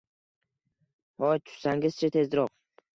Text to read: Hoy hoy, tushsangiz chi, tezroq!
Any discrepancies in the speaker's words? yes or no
yes